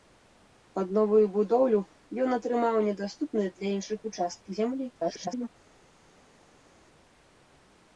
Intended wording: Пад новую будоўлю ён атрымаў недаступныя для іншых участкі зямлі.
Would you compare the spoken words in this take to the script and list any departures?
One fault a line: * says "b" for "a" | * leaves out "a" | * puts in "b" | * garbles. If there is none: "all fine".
* garbles